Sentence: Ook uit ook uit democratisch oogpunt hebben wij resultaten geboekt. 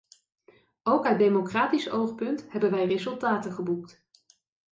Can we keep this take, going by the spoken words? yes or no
no